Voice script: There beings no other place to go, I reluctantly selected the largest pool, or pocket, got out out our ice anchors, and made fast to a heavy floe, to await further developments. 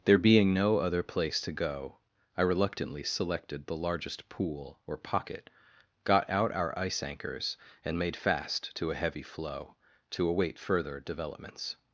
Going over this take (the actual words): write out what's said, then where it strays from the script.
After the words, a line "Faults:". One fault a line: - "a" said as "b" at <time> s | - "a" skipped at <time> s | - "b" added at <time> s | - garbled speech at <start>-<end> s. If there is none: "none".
There being no other place to go, I reluctantly selected the largest pool, or pocket, got out our ice anchors, and made fast to a heavy floe, to await further developments.
Faults:
- "beings" said as "being" at 0.2 s
- "out" skipped at 6.5 s